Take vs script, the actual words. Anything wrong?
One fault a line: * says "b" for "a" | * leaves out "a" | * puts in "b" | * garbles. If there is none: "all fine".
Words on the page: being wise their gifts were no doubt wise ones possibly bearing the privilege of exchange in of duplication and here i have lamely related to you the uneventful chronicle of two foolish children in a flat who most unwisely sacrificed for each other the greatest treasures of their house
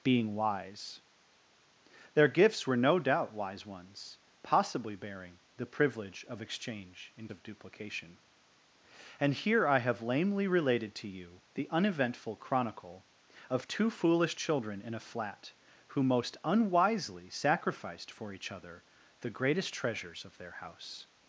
all fine